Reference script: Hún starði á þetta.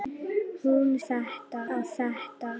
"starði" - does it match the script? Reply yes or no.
no